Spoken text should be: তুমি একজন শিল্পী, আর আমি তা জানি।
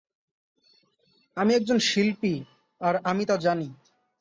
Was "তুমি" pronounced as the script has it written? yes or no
no